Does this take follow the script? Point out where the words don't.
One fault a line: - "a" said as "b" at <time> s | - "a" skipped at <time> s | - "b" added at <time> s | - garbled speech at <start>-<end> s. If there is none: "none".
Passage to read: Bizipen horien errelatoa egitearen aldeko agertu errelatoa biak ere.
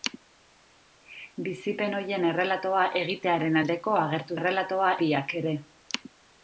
none